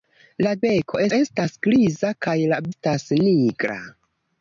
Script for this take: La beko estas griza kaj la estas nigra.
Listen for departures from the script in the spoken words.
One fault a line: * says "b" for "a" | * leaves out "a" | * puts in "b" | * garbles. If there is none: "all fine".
all fine